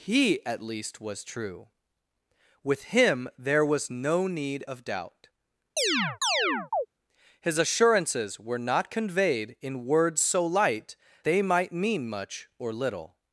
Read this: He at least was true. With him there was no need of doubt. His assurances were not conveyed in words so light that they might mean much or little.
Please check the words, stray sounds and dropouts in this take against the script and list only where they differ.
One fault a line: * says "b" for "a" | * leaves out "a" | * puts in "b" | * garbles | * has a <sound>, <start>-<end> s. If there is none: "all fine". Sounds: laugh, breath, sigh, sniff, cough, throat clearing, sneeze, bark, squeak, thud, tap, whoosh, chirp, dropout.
* has a chirp, 5.8-6.9 s
* leaves out "that"